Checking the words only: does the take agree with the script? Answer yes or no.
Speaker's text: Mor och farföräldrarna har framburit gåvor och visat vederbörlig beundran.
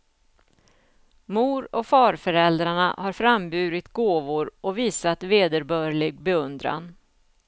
yes